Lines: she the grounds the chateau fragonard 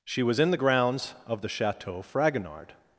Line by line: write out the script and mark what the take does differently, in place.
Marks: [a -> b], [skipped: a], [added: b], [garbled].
she [added: was in] the grounds [added: of] the chateau fragonard